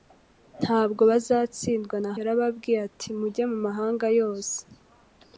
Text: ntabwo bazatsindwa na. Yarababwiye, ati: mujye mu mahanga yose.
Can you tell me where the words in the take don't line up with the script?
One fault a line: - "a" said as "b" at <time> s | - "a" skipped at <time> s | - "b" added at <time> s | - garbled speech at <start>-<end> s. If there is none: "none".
none